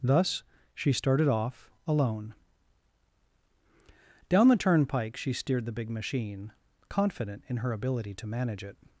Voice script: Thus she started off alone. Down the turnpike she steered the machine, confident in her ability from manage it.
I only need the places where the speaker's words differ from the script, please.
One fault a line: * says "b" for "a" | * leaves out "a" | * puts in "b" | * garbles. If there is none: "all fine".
* puts in "big"
* says "to" for "from"